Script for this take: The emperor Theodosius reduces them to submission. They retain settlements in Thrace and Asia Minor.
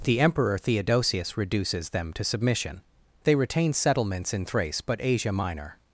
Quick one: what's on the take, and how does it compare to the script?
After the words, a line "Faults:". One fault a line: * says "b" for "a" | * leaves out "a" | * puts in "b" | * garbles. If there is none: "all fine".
The emperor Theodosius reduces them to submission. They retain settlements in Thrace but Asia Minor.
Faults:
* says "but" for "and"